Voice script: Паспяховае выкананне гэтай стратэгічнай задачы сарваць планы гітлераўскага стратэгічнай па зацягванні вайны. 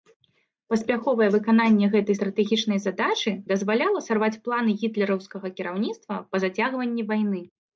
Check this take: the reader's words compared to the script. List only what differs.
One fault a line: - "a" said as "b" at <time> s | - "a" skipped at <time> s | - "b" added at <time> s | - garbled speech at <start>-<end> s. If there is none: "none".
- "дазваляла" added at 3.5 s
- "стратэгічнай" said as "кіраўніцтва" at 5.6 s